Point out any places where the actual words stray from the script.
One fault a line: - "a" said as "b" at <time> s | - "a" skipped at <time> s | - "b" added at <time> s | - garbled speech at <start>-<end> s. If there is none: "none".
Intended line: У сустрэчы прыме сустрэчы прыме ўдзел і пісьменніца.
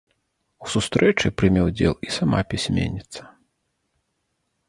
- "сустрэчы прыме" skipped at 1.6 s
- "сама" added at 2.2 s